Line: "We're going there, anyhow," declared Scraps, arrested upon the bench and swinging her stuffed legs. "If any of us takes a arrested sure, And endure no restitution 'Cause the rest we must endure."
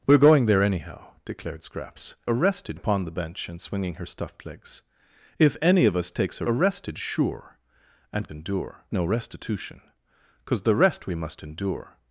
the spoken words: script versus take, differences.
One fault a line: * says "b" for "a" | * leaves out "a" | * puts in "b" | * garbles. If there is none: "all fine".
all fine